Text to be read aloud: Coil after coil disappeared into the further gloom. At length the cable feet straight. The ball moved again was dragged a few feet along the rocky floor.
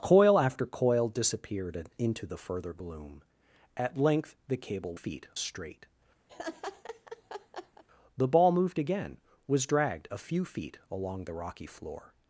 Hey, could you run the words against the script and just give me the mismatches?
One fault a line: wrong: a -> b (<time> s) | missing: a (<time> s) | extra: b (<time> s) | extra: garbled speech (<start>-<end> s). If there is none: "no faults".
no faults